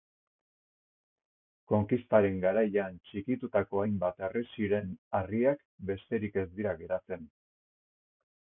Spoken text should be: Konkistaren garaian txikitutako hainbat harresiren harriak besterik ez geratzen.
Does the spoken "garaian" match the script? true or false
true